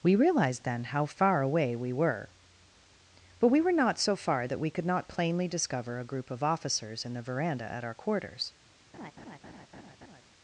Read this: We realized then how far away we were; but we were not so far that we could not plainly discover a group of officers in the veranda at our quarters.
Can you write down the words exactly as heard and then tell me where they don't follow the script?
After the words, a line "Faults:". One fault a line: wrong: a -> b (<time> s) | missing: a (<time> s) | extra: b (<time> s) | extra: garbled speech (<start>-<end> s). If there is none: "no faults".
We realized then how far away we were; but we were not so far that we could not plainly discover a group of officers in the veranda at our quarters.
Faults:
no faults